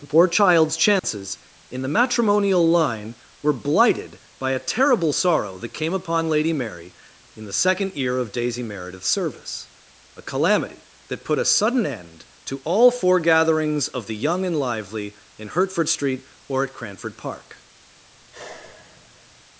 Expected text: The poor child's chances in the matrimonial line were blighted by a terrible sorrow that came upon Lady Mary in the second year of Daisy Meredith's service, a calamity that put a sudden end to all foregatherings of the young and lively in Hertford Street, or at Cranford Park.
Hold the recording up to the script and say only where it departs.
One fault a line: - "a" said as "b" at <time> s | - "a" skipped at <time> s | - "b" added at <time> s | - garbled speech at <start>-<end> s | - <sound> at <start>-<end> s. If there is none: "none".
- dropout at 1.0-1.0 s
- sigh at 18.1-19.4 s